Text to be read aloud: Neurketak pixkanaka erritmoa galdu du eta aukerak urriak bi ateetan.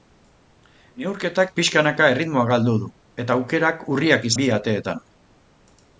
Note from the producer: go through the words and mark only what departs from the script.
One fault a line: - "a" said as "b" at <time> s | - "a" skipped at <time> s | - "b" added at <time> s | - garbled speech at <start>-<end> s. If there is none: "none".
none